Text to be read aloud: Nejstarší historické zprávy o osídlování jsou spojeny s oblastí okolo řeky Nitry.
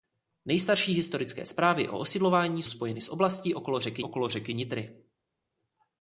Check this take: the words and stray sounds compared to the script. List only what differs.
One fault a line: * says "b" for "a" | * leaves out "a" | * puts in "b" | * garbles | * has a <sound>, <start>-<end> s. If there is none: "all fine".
* leaves out "jsou"
* puts in "okolo řeky"